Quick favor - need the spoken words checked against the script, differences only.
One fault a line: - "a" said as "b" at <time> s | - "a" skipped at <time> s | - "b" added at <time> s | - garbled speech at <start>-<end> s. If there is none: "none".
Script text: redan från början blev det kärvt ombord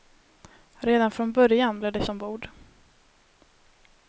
- "kärvt" skipped at 2.1 s